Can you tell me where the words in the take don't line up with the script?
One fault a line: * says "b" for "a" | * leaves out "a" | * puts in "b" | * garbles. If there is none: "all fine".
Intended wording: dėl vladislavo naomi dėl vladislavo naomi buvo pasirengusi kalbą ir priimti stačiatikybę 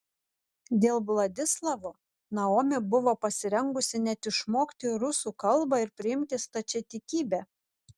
* says "buvo pasirengusi net išmokti rusų" for "dėl vladislavo naomi buvo pasirengusi"